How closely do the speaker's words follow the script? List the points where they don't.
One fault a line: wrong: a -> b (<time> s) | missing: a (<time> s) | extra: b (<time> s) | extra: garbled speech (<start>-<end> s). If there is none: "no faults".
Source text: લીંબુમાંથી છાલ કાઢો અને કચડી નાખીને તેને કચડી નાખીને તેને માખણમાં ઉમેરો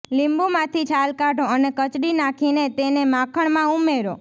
missing: કચડી નાખીને તેને (3.0 s)